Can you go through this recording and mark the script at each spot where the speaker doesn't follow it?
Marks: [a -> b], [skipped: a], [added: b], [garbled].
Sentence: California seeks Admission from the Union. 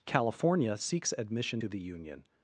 California seeks Admission [from -> to] the Union.